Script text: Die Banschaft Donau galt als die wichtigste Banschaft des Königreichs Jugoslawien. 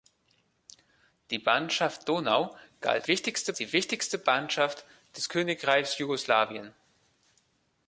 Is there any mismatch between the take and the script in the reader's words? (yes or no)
yes